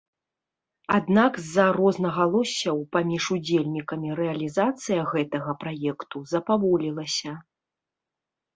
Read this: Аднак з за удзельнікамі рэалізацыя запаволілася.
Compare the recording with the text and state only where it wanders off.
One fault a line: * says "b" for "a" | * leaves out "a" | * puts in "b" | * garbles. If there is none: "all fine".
* puts in "рознагалоссяў паміж"
* puts in "гэтага праекту"